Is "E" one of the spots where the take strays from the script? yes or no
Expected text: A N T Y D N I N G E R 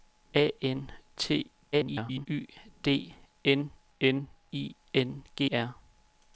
yes